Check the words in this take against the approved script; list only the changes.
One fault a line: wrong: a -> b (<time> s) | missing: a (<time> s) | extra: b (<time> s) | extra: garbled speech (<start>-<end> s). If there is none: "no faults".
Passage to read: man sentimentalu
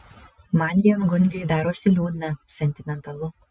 extra: viengungiui darosi liūdna (0.9 s)